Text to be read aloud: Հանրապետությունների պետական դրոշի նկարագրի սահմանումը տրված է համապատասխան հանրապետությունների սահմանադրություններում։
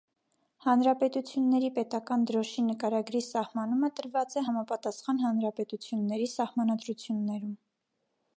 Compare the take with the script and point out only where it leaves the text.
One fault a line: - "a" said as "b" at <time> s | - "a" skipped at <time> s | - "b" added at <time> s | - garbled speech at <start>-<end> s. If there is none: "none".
none